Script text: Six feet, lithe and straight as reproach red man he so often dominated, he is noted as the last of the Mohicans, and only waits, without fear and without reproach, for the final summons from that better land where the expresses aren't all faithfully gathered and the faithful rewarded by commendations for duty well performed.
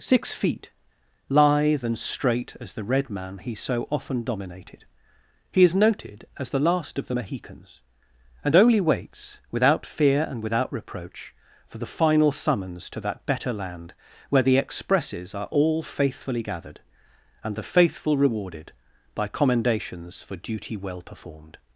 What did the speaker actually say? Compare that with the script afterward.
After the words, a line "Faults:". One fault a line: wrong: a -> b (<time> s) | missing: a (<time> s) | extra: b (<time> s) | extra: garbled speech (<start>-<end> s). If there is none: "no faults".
Six feet, lithe and straight as the red man he so often dominated, he is noted as the last of the Mohicans, and only waits, without fear and without reproach, for the final summons to that better land where the expresses are all faithfully gathered and the faithful rewarded by commendations for duty well performed.
Faults:
wrong: reproach -> the (2.7 s)
wrong: from -> to (12.9 s)
wrong: aren't -> are (15.3 s)